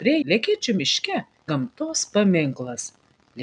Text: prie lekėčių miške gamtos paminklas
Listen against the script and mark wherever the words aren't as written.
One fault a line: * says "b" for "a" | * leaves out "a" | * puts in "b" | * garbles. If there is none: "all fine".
all fine